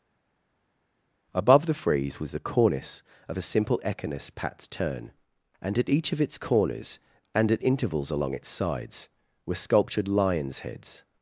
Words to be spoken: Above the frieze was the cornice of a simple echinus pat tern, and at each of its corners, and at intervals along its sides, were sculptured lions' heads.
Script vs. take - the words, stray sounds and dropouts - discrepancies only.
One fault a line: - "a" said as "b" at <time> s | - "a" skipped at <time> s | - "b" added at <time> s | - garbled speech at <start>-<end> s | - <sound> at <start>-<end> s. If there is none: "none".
none